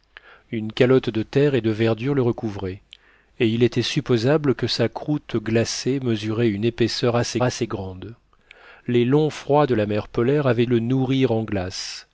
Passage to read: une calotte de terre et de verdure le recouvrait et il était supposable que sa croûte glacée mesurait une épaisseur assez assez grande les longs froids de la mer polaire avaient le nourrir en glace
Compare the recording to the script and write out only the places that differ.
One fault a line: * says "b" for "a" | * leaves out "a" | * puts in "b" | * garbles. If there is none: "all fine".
all fine